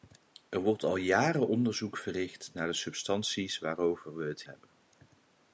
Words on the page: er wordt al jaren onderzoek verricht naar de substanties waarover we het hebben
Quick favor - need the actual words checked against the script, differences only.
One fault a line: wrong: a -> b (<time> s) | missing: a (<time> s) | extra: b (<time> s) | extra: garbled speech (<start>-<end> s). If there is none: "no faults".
no faults